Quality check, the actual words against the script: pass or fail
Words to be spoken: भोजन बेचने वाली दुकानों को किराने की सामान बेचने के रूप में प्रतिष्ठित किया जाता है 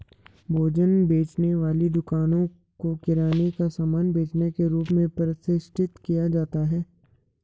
fail